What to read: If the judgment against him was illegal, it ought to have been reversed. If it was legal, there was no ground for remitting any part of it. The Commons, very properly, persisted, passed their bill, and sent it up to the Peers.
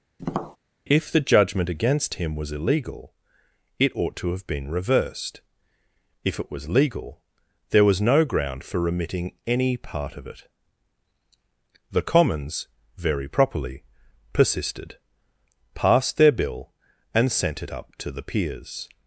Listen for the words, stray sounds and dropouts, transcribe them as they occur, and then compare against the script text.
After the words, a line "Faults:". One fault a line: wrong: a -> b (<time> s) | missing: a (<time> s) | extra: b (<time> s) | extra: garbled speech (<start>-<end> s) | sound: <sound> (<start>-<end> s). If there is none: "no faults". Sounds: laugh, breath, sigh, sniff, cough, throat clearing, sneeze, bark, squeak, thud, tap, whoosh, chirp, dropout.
If the judgment against him was illegal, it ought to have been reversed. If it was legal, there was no ground for remitting any part of it. The Commons, very properly, persisted, passed their bill, and sent it up to the Peers.
Faults:
sound: tap (0.2-0.6 s)